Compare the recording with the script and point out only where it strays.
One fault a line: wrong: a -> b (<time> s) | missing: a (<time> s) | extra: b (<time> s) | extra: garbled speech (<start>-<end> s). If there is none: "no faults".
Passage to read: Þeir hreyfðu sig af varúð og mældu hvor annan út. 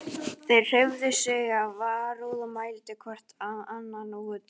no faults